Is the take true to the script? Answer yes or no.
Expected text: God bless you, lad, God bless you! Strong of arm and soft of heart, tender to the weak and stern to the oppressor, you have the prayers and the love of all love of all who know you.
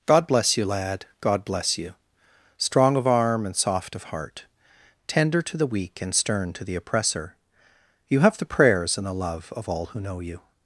no